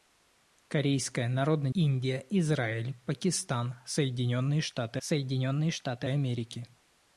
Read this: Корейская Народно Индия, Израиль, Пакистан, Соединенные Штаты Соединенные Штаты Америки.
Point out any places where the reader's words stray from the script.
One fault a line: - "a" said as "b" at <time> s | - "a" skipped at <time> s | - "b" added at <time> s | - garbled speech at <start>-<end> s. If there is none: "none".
none